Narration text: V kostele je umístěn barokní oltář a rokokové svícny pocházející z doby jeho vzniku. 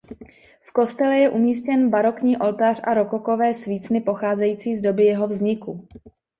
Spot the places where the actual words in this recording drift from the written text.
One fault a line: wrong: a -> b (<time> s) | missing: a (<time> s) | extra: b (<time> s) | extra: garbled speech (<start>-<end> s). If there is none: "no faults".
no faults